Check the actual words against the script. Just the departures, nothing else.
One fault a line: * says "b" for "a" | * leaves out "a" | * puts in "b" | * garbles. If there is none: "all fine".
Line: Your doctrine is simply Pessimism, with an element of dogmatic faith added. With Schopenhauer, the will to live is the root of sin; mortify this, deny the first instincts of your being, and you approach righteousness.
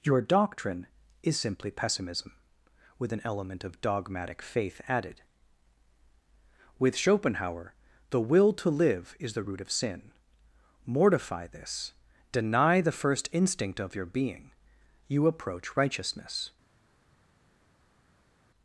* says "instinct" for "instincts"
* leaves out "and"